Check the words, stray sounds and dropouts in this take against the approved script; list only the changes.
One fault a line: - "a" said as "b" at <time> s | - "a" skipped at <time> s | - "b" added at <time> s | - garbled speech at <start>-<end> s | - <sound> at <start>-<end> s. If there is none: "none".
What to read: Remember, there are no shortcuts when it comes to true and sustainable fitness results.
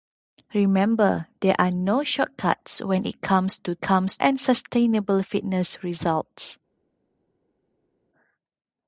- "true" said as "comes" at 3.8 s